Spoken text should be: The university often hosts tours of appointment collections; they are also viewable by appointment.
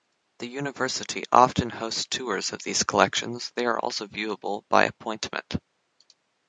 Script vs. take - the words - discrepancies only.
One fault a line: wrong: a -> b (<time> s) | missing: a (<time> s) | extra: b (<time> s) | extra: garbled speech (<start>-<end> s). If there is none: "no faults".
wrong: appointment -> these (2.6 s)